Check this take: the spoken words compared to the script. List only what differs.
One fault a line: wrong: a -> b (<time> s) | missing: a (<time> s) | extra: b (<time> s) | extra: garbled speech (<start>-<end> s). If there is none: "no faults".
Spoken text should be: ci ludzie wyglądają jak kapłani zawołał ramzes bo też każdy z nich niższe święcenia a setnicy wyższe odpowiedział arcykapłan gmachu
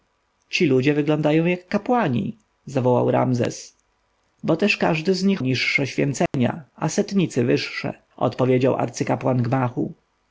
no faults